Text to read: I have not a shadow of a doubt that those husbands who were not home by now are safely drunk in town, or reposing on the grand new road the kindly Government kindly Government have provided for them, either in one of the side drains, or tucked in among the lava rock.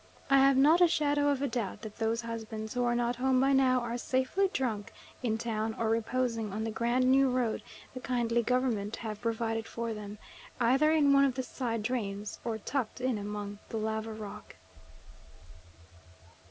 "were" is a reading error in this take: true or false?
true